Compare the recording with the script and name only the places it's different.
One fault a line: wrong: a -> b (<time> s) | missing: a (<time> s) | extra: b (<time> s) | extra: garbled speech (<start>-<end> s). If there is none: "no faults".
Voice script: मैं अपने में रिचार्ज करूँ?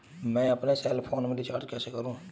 extra: सेल फोन (0.7 s)
extra: कैसे (1.7 s)